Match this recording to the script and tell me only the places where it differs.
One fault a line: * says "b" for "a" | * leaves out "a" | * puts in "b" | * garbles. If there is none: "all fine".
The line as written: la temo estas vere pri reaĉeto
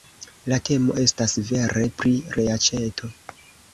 all fine